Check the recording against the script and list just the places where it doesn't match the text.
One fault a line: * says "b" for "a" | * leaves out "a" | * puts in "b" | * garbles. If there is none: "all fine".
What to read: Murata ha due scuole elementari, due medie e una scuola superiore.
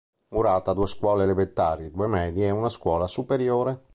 all fine